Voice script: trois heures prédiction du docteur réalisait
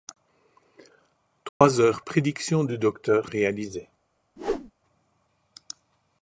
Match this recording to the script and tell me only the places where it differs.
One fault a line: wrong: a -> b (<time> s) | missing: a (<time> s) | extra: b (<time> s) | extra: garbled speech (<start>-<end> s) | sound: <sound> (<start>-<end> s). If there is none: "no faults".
sound: dropout (1.5-1.6 s)
sound: whoosh (4.4-4.7 s)